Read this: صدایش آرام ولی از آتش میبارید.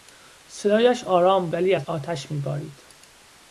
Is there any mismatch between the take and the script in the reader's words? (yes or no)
no